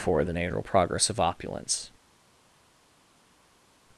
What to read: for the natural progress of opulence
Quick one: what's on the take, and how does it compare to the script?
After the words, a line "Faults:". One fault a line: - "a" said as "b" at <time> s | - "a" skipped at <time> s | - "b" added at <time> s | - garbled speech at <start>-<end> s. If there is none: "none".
for the natural progress of opulence
Faults:
none